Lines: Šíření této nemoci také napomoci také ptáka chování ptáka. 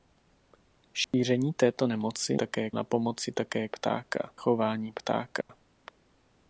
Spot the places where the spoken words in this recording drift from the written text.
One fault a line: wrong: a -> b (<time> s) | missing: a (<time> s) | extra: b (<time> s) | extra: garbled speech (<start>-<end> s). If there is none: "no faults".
no faults